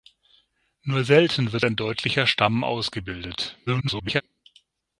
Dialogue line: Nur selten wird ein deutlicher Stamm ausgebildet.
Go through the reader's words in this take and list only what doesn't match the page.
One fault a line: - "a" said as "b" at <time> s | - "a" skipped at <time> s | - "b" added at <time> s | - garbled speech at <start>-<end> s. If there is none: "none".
- garbled speech at 3.7-4.2 s